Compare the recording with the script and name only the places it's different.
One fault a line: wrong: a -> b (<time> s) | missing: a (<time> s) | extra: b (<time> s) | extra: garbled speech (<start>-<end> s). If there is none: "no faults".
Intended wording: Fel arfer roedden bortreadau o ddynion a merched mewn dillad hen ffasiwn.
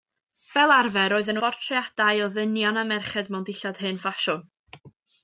no faults